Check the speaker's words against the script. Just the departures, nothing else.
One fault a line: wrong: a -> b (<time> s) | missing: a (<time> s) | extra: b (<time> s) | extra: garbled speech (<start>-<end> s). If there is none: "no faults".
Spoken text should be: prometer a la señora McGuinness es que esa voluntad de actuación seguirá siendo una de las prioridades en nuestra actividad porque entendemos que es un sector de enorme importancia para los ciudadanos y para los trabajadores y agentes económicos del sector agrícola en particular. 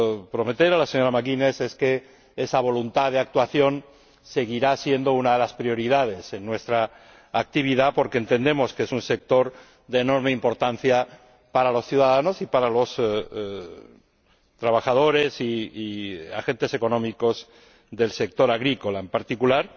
no faults